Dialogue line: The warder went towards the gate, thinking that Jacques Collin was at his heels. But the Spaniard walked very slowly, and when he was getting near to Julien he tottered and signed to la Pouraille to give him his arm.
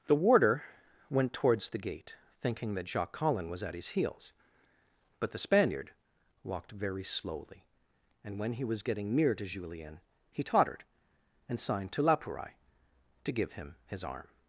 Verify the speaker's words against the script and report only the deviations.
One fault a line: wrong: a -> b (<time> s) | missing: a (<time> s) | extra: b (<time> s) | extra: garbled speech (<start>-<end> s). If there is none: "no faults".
no faults